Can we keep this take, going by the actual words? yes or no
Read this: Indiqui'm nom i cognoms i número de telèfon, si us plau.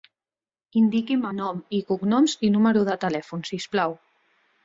yes